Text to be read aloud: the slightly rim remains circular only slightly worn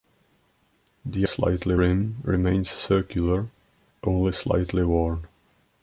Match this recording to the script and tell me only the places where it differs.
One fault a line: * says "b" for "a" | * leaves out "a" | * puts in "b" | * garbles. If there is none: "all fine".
all fine